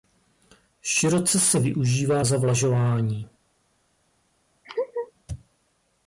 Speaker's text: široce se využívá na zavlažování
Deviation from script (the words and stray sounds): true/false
true